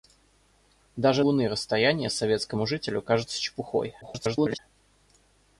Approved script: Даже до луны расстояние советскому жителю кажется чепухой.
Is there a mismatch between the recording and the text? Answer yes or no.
yes